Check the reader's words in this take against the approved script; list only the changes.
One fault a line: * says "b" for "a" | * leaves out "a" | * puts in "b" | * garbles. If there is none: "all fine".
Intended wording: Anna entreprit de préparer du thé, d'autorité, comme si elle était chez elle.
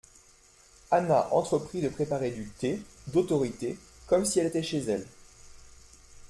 all fine